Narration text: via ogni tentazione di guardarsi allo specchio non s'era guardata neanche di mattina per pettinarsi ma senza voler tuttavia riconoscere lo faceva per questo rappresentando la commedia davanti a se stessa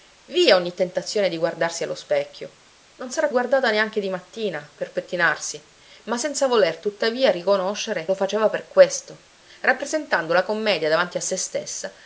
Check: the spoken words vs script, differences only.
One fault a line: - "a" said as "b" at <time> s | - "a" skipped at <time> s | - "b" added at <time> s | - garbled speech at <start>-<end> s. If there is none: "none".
none